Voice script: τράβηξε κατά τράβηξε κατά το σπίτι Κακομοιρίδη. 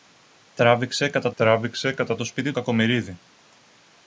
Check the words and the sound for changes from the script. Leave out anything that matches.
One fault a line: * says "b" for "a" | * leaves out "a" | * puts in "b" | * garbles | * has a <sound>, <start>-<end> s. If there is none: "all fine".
all fine